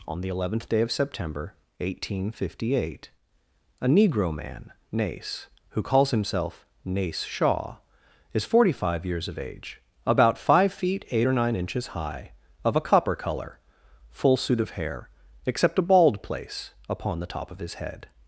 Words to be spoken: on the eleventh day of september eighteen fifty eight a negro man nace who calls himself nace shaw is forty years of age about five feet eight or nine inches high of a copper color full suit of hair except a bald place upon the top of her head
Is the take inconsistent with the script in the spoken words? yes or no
yes